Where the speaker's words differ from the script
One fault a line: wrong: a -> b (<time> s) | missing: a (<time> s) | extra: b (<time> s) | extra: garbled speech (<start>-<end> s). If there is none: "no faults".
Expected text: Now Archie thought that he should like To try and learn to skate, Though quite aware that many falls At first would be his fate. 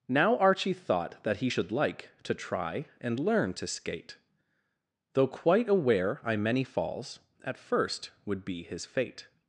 wrong: that -> I (6.2 s)